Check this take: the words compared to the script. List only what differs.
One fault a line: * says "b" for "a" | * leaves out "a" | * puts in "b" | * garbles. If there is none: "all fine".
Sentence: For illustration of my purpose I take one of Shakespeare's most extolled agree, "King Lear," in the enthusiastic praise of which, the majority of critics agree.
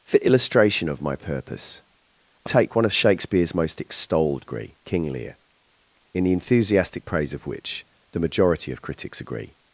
all fine